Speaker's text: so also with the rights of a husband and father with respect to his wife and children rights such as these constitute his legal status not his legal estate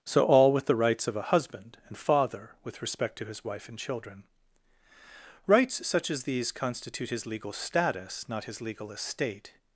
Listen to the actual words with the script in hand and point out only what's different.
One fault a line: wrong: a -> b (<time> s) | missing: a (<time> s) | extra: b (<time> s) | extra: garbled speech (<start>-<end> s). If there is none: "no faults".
wrong: also -> all (0.2 s)